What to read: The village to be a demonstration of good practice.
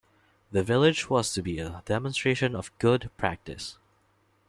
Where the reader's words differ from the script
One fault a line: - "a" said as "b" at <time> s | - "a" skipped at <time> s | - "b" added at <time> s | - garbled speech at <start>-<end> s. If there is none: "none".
- "was" added at 1.1 s